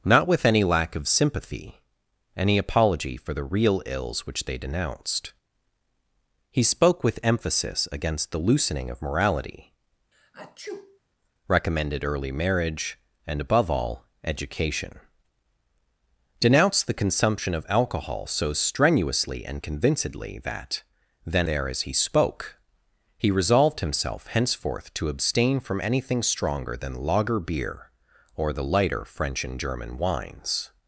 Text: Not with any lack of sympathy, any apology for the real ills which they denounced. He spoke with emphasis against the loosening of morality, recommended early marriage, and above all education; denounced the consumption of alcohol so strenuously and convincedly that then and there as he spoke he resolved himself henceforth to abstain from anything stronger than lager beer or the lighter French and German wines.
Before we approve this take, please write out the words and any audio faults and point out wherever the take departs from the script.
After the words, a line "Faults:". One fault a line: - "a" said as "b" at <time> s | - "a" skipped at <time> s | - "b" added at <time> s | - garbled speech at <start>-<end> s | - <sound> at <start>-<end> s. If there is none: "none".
Not with any lack of sympathy, any apology for the real ills which they denounced. He spoke with emphasis against the loosening of morality, recommended early marriage, and above all education; denounced the consumption of alcohol so strenuously and convincedly that then there as he spoke he resolved himself henceforth to abstain from anything stronger than lager beer or the lighter French and German wines.
Faults:
- sneeze at 10.1-11.0 s
- "and" skipped at 21.5 s